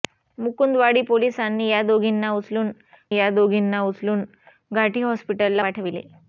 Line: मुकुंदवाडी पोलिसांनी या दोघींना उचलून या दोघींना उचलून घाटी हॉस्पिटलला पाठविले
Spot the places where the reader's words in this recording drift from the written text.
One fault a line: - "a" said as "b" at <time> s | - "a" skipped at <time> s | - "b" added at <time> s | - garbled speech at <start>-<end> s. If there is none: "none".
none